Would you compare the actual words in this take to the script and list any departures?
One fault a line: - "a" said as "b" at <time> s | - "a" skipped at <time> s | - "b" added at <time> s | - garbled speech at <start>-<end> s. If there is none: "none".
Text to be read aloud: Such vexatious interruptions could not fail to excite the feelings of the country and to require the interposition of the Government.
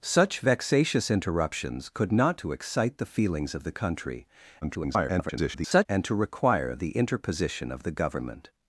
- "fail" skipped at 2.4 s
- garbled speech at 4.6-5.9 s